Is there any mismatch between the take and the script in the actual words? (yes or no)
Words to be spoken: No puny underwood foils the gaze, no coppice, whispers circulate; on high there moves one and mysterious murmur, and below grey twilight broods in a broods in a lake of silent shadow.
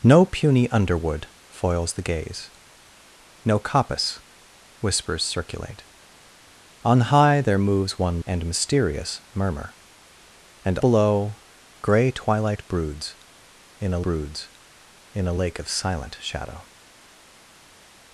no